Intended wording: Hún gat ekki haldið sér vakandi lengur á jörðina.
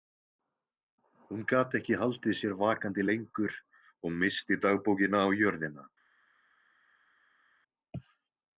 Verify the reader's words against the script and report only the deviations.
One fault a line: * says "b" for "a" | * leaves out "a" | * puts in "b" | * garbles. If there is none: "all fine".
* puts in "og missti dagbókina"